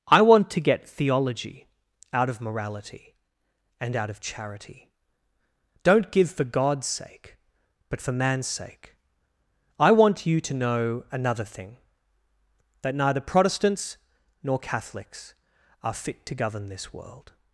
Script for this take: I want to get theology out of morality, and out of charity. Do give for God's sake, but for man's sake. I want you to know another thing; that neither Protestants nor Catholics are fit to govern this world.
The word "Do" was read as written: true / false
false